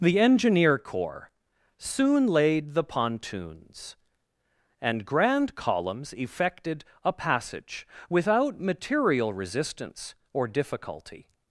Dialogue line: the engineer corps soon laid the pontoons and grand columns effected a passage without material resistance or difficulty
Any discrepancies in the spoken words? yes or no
no